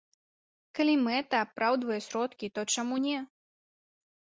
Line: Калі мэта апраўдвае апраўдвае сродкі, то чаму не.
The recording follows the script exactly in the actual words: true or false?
false